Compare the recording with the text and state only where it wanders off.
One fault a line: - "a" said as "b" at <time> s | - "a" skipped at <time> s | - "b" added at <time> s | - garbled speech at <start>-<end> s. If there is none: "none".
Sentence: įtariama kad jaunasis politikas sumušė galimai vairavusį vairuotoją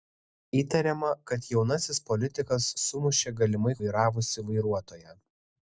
none